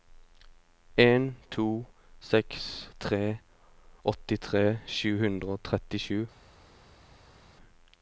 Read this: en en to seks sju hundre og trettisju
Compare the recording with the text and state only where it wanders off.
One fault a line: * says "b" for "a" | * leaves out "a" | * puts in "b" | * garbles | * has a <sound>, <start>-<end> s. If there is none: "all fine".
* leaves out "en"
* puts in "tre åttitre"